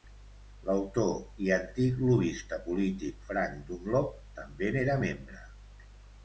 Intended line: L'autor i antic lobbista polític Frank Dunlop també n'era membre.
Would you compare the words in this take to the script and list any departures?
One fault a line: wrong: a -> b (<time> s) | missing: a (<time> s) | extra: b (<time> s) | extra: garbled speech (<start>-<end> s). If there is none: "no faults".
no faults